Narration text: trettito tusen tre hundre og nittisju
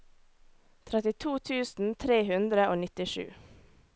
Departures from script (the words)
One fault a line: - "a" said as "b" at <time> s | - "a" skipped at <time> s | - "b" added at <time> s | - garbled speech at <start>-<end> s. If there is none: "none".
none